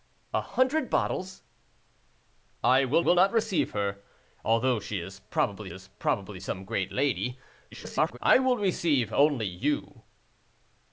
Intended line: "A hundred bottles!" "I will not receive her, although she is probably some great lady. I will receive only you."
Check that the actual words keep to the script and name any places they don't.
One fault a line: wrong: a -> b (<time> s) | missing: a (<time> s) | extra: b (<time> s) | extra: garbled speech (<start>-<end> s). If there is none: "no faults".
extra: will (3.0 s)
extra: is probably (5.7 s)
extra: garbled speech (7.7-8.2 s)